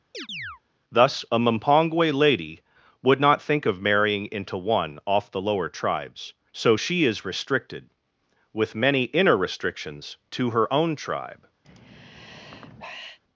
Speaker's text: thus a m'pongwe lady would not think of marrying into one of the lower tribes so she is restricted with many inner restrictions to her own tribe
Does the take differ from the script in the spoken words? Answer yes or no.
yes